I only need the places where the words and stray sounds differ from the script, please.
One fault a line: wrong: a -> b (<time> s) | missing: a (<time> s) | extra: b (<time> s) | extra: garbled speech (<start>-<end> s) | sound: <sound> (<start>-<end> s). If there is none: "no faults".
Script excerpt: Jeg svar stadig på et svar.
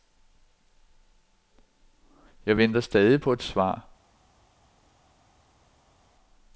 wrong: svar -> venter (2.6 s)